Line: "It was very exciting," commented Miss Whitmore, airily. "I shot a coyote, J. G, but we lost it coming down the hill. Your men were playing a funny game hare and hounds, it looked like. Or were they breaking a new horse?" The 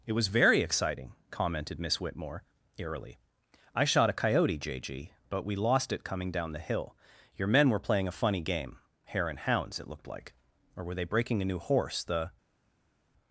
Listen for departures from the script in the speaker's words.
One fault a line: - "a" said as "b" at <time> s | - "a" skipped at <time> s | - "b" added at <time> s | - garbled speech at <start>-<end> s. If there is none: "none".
none